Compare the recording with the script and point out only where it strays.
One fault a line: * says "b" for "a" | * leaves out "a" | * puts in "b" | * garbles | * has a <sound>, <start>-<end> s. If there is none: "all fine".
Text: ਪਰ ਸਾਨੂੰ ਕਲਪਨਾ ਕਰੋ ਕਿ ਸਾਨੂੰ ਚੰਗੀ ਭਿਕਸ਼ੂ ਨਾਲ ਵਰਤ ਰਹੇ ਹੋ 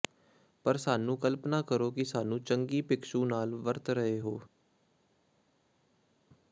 all fine